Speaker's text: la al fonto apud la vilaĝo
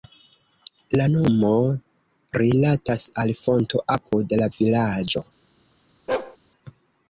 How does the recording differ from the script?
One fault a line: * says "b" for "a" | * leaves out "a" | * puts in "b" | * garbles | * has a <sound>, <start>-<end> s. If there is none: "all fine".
* puts in "nomo rilatas"
* has a bark, 6.1-6.4 s